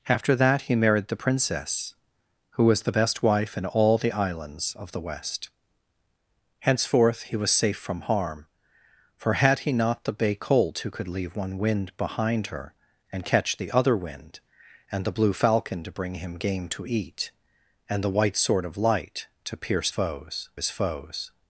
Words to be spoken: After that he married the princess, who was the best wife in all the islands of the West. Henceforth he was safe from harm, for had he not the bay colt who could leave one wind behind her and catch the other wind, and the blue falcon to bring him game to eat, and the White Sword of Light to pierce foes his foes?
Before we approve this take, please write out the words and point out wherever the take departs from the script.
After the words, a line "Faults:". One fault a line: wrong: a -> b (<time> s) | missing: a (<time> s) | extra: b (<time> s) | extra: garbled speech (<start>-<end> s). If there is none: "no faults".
After that he married the princess, who was the best wife in all the islands of the West. Henceforth he was safe from harm, for had he not the bay colt who could leave one wind behind her and catch the other wind, and the blue falcon to bring him game to eat, and the White Sword of Light to pierce foes his foes?
Faults:
no faults